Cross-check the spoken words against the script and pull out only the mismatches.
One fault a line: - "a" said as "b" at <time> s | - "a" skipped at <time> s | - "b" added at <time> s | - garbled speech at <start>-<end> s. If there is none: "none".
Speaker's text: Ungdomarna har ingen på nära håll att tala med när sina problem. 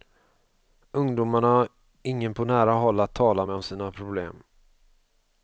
- "när" said as "om" at 3.5 s